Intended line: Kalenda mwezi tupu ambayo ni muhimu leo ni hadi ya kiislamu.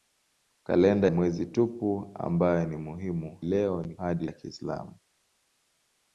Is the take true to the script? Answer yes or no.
yes